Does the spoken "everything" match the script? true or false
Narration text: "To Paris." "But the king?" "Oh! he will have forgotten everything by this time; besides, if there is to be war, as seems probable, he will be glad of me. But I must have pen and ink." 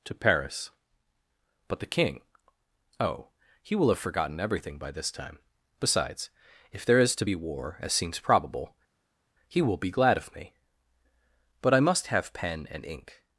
true